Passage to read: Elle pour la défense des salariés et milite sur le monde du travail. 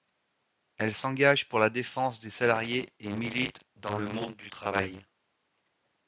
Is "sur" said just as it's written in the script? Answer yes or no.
no